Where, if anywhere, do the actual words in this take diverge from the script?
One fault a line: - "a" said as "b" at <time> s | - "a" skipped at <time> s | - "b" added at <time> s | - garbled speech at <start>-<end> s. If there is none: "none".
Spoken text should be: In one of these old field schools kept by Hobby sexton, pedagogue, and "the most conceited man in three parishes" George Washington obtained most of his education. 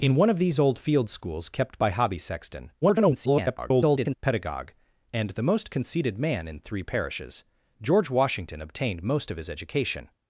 - garbled speech at 2.8-4.2 s